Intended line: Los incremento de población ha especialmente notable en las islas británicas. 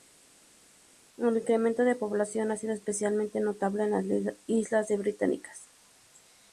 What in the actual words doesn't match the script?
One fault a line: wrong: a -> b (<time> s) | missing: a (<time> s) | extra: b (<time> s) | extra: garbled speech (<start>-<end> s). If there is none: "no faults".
wrong: Los -> El (1.2 s)
extra: sido (2.6 s)